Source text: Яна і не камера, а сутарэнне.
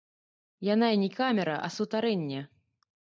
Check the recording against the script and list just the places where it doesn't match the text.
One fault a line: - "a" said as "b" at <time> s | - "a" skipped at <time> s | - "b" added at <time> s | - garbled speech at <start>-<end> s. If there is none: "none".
none